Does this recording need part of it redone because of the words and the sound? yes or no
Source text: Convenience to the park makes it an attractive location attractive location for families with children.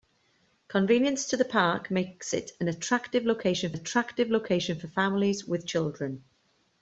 no